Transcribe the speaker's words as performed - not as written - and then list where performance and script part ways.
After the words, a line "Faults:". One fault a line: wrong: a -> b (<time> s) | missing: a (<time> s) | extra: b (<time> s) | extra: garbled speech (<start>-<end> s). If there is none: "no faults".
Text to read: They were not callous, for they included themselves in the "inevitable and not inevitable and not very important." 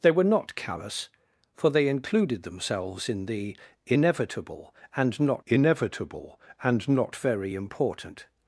They were not callous, for they included themselves in the "inevitable and not inevitable and not very important."
Faults:
no faults